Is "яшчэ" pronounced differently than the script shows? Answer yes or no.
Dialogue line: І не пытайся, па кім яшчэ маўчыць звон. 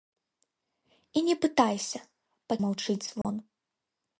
yes